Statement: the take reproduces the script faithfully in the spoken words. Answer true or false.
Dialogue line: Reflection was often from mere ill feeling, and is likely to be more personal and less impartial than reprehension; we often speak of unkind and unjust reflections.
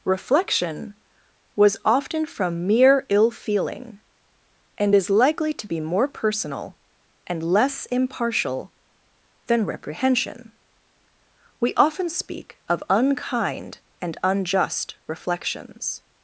true